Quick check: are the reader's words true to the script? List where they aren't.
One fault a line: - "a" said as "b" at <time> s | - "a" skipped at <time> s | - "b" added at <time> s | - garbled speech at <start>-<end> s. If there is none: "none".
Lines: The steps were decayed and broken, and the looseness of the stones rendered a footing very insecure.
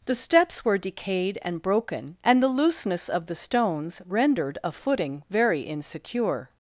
none